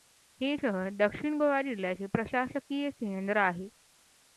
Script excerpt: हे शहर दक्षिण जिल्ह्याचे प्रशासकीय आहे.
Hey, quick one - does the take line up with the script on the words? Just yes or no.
no